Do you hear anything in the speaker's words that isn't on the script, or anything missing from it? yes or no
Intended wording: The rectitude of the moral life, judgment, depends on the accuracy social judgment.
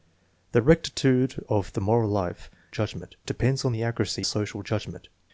no